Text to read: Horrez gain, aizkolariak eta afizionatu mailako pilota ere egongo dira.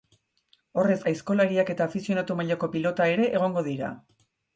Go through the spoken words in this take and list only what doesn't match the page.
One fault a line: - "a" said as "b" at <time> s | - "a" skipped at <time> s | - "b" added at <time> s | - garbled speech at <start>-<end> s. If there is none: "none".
- "gain" skipped at 1.0 s